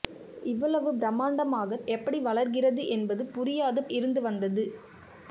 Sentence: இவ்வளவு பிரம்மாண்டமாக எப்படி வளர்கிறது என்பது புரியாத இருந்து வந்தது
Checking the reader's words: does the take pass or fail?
pass